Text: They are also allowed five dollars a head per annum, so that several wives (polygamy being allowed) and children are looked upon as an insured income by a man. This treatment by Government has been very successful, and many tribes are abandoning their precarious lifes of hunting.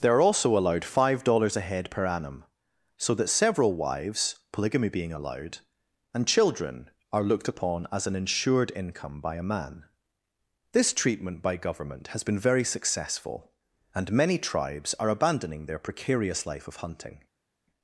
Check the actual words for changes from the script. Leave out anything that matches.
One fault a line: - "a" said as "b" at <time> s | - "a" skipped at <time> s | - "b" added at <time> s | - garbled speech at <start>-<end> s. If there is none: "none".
- "lifes" said as "life" at 16.5 s